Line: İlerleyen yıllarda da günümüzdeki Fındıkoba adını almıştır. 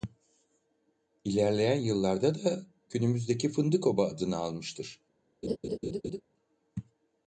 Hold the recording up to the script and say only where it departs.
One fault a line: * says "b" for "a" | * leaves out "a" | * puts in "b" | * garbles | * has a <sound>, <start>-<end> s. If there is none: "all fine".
* has a laugh, 5.4-6.2 s